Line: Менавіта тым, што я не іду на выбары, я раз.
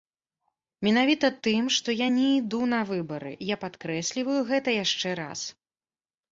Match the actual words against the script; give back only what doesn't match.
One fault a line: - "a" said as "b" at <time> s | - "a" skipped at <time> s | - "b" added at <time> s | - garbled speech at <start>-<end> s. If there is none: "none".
- "падкрэсліваю гэта яшчэ" added at 3.7 s